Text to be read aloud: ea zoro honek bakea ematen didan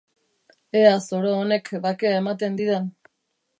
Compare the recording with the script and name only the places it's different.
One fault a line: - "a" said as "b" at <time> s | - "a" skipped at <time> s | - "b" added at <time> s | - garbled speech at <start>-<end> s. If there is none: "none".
none